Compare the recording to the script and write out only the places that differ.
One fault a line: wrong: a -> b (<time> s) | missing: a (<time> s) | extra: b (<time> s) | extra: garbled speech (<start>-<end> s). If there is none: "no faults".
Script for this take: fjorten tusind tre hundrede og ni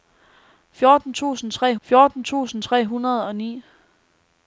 extra: fjorten tusind tre (1.8 s)